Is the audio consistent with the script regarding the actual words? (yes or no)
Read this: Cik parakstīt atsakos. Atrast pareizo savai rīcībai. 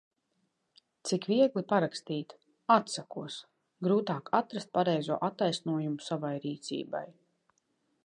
no